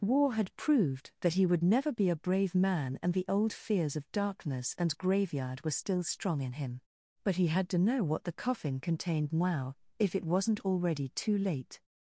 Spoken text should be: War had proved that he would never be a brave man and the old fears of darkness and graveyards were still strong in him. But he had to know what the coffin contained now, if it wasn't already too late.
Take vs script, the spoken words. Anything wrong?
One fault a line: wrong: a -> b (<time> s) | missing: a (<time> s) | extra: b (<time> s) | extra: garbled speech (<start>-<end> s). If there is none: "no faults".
wrong: graveyards -> graveyard (5.0 s)